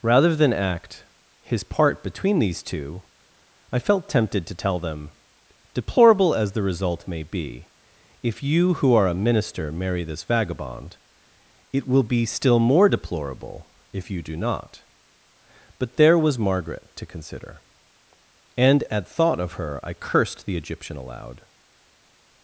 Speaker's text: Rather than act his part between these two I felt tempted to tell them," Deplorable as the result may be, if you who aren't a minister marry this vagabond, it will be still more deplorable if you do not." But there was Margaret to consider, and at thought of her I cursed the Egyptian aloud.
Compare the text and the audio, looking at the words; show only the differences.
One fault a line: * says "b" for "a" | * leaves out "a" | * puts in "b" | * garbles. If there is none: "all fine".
* says "are" for "aren't"